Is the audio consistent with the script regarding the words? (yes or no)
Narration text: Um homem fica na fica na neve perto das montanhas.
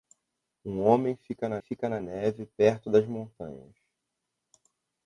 yes